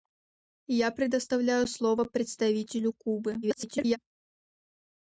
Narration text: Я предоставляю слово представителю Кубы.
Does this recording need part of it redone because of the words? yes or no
yes